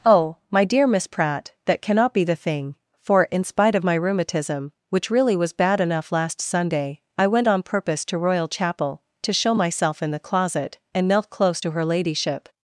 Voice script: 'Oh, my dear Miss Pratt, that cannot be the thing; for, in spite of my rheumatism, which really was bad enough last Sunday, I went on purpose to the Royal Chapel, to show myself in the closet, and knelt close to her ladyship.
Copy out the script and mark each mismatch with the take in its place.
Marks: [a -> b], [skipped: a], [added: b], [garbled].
'Oh, my dear Miss Pratt, that cannot be the thing; for, in spite of my rheumatism, which really was bad enough last Sunday, I went on purpose to [skipped: the] Royal Chapel, to show myself in the closet, and knelt close to her ladyship.